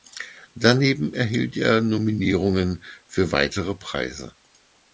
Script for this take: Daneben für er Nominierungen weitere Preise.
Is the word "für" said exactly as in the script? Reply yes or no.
no